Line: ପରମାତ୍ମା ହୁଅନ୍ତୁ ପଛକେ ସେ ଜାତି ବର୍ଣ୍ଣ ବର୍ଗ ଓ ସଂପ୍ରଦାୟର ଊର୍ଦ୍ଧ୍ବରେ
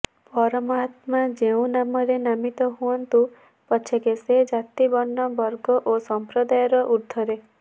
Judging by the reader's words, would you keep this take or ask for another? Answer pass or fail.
fail